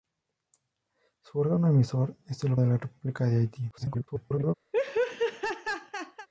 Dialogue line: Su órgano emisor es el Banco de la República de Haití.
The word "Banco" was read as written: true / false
false